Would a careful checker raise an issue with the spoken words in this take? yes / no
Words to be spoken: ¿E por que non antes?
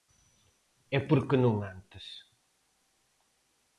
no